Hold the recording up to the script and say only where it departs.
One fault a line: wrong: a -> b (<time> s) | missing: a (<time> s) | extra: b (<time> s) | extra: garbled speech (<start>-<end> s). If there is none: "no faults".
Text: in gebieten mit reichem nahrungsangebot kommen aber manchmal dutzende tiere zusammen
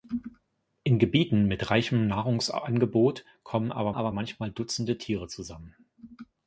extra: aber (3.9 s)